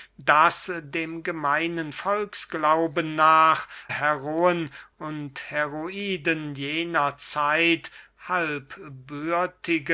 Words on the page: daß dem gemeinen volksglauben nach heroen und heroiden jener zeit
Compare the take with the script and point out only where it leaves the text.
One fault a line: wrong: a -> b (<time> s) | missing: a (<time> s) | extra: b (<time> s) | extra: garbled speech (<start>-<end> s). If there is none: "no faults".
no faults